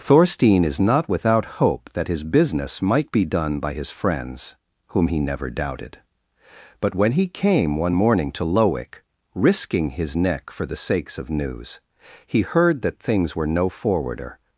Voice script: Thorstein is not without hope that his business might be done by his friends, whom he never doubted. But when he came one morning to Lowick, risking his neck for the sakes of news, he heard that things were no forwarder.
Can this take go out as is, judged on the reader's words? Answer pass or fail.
pass